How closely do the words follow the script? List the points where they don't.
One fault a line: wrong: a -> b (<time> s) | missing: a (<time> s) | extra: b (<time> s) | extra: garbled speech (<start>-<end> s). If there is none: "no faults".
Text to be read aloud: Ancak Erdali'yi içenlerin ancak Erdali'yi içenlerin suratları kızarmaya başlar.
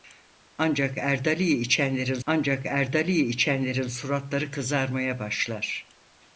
no faults